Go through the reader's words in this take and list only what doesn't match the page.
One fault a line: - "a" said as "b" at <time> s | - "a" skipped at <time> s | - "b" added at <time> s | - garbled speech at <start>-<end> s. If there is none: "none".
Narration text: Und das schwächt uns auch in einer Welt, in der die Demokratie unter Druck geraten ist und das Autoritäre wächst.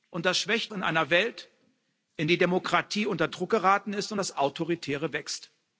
- "uns auch" skipped at 0.7 s
- "der" skipped at 2.3 s